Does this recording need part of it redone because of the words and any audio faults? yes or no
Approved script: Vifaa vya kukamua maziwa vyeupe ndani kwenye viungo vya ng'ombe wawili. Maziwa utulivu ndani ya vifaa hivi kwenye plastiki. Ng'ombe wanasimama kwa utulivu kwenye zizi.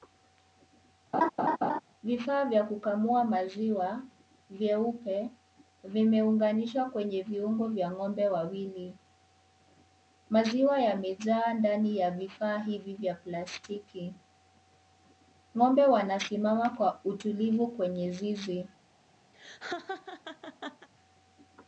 yes